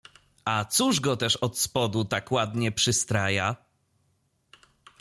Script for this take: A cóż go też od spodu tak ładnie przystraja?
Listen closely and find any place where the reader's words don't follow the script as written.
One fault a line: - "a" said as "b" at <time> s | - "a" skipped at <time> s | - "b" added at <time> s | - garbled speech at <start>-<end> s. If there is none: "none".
none